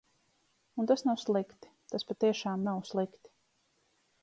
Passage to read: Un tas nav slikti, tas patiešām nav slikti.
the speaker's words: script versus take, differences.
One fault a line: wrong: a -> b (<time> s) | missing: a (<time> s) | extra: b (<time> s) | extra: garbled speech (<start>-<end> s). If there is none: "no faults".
no faults